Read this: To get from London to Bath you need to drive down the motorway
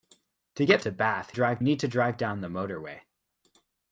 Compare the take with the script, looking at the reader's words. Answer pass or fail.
fail